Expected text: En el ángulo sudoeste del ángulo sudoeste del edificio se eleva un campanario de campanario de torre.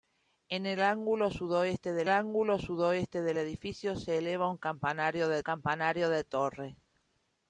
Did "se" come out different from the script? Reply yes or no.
no